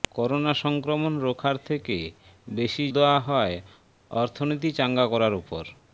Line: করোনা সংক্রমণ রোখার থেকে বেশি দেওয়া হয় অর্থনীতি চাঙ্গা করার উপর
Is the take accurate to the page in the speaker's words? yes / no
yes